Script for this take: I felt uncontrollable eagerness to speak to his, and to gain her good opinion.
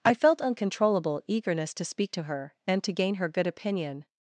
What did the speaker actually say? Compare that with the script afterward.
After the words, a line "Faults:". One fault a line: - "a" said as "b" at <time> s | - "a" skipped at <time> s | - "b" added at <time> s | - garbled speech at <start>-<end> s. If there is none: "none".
I felt uncontrollable eagerness to speak to her, and to gain her good opinion.
Faults:
- "his" said as "her" at 2.2 s